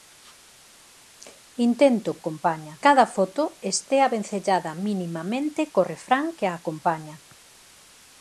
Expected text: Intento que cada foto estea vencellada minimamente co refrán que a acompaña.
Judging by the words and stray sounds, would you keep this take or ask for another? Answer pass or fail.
fail